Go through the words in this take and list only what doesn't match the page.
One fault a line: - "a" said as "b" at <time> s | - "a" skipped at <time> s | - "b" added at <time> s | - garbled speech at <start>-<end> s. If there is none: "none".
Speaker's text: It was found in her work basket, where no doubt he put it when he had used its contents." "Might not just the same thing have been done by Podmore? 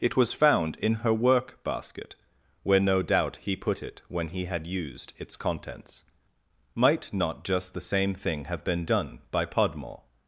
none